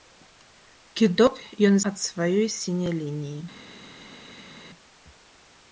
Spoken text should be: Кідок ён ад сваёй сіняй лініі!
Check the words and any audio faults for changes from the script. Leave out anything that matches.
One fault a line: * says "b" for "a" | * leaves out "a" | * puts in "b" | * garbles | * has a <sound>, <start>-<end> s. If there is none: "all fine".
all fine